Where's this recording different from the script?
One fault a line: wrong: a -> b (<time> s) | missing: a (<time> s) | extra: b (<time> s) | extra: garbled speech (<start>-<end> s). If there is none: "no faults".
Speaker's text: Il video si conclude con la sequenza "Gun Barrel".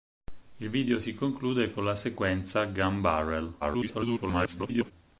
extra: garbled speech (3.6-4.9 s)